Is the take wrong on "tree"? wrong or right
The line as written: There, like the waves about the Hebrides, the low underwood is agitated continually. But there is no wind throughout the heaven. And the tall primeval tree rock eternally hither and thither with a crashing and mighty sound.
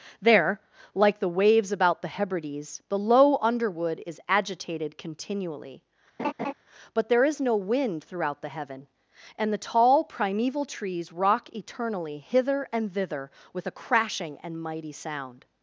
wrong